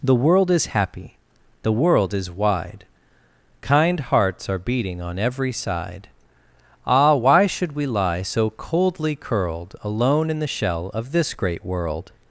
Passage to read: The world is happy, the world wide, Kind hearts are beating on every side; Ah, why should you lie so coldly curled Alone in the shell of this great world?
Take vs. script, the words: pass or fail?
fail